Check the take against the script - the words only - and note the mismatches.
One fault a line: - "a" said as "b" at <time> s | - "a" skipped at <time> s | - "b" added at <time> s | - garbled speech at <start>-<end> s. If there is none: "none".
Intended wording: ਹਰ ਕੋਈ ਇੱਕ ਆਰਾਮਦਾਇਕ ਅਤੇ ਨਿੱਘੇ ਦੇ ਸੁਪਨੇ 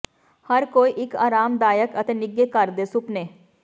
- "ਘਰ" added at 2.5 s